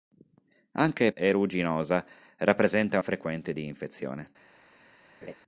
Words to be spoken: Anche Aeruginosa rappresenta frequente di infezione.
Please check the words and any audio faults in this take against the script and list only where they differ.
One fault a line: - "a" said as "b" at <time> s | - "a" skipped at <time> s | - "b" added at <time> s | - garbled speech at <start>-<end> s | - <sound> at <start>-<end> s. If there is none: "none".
- laugh at 5.2-5.3 s